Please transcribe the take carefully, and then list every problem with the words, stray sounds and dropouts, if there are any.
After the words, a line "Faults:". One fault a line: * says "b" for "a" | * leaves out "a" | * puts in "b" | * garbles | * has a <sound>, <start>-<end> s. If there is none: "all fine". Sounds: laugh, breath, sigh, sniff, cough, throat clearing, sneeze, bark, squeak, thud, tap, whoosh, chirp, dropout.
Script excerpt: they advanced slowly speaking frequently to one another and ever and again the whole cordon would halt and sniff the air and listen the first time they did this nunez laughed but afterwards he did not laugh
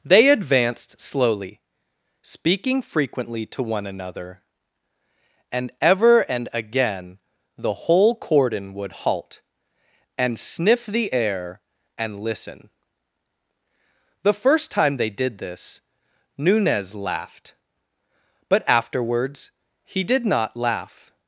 they advanced slowly speaking frequently to one another and ever and again the whole cordon would halt and sniff the air and listen the first time they did this nunez laughed but afterwards he did not laugh
Faults:
all fine